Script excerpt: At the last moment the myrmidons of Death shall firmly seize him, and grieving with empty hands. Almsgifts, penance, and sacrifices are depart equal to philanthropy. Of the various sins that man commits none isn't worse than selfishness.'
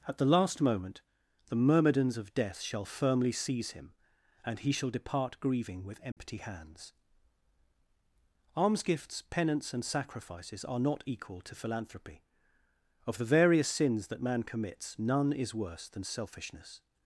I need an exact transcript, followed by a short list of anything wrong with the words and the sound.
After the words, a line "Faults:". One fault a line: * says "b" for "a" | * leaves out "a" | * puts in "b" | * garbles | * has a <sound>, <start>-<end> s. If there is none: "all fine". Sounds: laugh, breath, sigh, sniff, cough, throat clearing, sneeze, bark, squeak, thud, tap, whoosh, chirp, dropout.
At the last moment the myrmidons of Death shall firmly seize him, and he shall depart grieving with empty hands. Almsgifts, penance, and sacrifices are not equal to philanthropy. Of the various sins that man commits none is worse than selfishness.'
Faults:
* puts in "he shall depart"
* has a dropout, 6.1-6.2 s
* says "not" for "depart"
* says "is" for "isn't"